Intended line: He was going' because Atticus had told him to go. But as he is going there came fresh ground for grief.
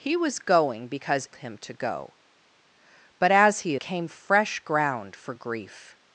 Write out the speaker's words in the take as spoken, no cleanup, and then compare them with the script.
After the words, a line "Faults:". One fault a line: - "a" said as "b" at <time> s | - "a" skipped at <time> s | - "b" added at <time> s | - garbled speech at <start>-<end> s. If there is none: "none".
He was going' because Him to go. But as he came fresh ground for grief.
Faults:
- "Atticus had told" skipped at 1.3 s
- "is going there" skipped at 3.7 s